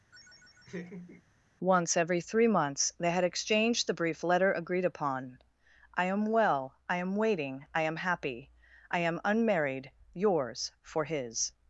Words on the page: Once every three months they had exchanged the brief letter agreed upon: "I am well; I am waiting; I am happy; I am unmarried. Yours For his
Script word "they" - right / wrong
right